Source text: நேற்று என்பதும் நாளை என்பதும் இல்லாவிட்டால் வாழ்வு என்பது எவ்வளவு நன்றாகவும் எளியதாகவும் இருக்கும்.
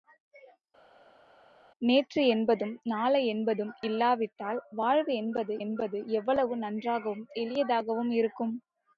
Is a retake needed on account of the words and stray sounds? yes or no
yes